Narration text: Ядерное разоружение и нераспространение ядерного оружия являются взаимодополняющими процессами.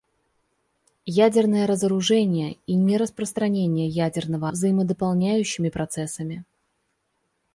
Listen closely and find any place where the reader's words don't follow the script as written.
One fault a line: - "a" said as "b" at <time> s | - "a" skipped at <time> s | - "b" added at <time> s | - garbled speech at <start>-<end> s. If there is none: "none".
- "оружия являются" skipped at 4.5 s